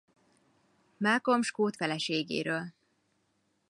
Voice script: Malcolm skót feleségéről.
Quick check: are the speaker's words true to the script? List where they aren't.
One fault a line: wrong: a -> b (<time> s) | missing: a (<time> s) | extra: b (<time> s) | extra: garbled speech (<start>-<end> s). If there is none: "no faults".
no faults